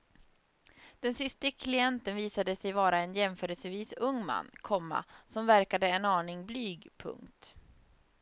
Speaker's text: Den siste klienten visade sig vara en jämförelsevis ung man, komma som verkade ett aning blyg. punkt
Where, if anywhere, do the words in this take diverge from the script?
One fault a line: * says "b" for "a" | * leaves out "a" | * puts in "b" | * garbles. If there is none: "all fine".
* says "en" for "ett"